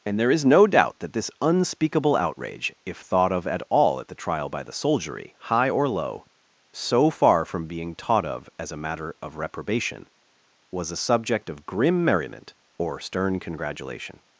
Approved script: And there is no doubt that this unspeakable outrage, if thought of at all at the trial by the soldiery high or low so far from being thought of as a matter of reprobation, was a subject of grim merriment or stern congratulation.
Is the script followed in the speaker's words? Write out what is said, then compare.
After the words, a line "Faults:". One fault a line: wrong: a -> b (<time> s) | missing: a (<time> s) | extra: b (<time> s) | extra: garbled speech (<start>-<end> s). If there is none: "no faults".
And there is no doubt that this unspeakable outrage, if thought of at all at the trial by the soldiery high or low so far from being taught of as a matter of reprobation, was a subject of grim merriment or stern congratulation.
Faults:
wrong: thought -> taught (7.9 s)